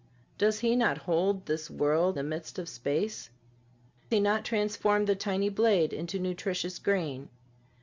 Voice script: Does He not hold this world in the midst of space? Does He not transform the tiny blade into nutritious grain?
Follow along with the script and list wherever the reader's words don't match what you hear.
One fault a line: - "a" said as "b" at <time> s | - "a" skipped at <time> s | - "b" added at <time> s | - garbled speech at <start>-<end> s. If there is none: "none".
- "in" skipped at 2.2 s
- "Does" skipped at 3.3 s